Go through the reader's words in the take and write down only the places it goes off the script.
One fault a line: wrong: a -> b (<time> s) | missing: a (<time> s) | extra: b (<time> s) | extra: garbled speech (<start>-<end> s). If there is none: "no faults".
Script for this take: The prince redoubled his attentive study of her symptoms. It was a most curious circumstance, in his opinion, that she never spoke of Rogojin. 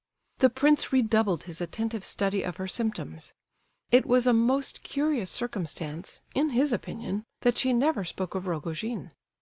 no faults